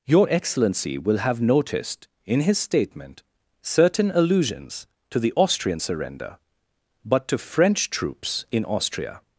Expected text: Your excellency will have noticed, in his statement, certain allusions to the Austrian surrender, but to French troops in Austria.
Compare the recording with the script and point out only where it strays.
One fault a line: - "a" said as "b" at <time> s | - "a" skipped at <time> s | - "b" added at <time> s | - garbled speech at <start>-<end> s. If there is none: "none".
none